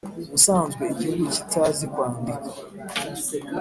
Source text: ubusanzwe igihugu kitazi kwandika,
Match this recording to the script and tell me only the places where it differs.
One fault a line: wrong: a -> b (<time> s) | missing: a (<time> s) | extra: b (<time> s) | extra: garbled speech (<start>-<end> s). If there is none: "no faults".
no faults